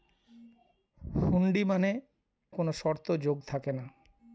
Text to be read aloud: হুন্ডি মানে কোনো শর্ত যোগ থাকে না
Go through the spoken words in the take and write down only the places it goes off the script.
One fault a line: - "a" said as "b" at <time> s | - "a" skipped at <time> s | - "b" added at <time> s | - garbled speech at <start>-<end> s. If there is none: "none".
none